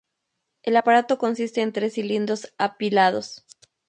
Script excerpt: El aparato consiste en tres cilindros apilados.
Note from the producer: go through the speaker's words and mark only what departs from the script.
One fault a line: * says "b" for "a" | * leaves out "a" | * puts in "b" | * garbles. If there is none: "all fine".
all fine